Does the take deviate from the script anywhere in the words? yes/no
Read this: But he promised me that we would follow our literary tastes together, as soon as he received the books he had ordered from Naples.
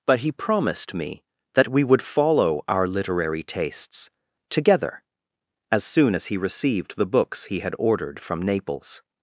no